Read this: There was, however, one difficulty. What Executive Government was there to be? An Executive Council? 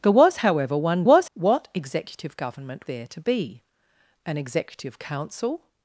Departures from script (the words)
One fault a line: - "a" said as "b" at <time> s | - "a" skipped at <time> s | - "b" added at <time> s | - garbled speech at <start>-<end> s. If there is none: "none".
- "difficulty" said as "was" at 1.0 s
- "was" skipped at 2.9 s